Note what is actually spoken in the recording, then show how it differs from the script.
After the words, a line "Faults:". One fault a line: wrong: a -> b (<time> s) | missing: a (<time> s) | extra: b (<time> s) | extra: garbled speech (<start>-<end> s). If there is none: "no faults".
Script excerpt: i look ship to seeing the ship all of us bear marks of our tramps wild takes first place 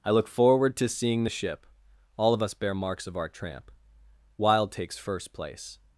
i look forward to seeing the ship all of us bear marks of our tramp wild takes first place
Faults:
wrong: ship -> forward (0.3 s)
wrong: tramps -> tramp (3.3 s)